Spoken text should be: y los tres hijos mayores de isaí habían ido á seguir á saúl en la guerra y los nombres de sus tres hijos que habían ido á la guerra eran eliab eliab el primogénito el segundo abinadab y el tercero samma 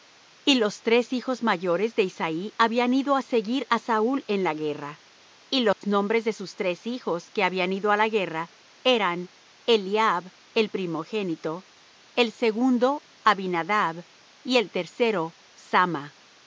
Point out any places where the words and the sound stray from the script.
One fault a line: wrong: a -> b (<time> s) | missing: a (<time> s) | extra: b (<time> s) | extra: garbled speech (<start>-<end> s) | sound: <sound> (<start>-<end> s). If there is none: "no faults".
sound: dropout (5.7-5.8 s)
missing: eliab (10.3 s)